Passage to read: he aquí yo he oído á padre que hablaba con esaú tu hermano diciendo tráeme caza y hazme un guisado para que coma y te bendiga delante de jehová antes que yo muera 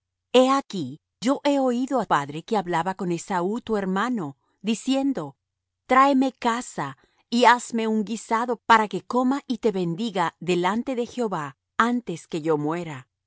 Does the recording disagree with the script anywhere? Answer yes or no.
no